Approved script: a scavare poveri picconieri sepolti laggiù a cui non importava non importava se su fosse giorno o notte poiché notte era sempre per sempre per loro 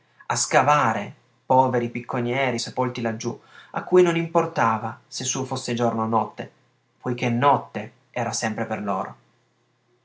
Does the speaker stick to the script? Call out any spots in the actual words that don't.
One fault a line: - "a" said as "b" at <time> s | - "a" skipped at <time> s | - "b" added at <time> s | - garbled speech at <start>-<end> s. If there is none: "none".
- "non importava" skipped at 5.0 s
- "sempre per" skipped at 8.8 s